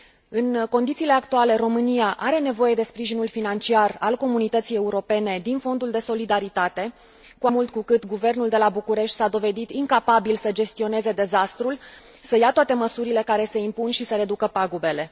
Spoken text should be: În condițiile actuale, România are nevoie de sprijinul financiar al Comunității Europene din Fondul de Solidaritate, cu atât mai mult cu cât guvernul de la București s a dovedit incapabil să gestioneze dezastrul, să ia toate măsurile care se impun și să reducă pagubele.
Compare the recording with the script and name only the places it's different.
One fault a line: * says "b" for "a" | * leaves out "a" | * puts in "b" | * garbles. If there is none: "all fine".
* leaves out "atât mai"